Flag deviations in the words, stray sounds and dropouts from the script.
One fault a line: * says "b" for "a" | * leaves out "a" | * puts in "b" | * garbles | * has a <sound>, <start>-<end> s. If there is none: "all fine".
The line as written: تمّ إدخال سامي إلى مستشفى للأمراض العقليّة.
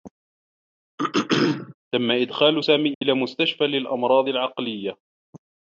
* has a throat clearing, 1.0-1.8 s
* has a dropout, 2.9-3.0 s